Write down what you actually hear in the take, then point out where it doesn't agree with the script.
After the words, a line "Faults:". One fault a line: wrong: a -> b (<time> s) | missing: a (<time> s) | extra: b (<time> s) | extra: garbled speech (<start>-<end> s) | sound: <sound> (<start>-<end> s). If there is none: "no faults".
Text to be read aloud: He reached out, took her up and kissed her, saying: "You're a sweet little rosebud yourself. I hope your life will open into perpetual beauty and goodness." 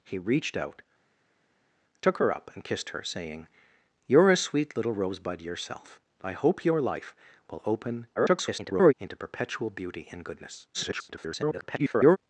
He reached out, took her up and kissed her, saying: "You're a sweet little rosebud yourself. I hope your life will open [garbled] into perpetual beauty and goodness." [garbled]
Faults:
extra: garbled speech (8.2-8.9 s)
extra: garbled speech (10.7-12.2 s)